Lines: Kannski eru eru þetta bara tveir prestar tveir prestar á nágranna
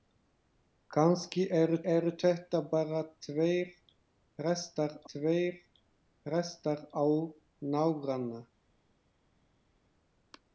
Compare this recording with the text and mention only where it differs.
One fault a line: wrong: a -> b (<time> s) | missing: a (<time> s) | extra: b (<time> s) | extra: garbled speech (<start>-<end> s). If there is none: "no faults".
no faults